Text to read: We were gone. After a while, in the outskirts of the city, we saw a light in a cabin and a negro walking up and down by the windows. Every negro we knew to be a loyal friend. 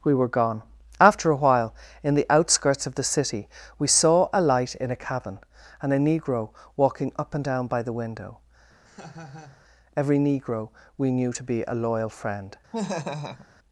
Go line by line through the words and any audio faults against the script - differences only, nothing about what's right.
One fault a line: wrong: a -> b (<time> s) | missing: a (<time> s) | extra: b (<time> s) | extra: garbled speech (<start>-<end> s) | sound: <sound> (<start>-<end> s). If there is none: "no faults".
wrong: windows -> window (7.9 s)
sound: laugh (8.9-9.6 s)
sound: laugh (12.7-13.5 s)